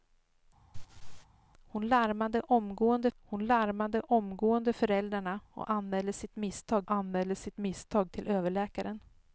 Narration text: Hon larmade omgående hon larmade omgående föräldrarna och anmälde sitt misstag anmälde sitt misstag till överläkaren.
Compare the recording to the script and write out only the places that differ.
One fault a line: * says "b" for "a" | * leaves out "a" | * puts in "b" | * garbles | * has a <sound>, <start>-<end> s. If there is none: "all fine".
* has a laugh, 0.7-1.3 s